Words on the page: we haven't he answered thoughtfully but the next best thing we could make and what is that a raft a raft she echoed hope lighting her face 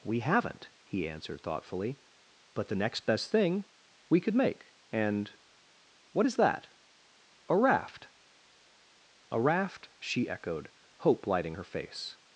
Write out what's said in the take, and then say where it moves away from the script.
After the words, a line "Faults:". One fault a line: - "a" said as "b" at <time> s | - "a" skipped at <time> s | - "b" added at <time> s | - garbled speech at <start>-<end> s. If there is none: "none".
we haven't he answered thoughtfully but the next best thing we could make and what is that a raft a raft she echoed hope lighting her face
Faults:
none